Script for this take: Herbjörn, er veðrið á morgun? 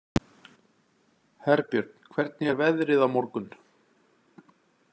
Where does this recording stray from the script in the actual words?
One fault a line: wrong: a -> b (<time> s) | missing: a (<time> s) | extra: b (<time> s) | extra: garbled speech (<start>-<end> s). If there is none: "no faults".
extra: hvernig (2.1 s)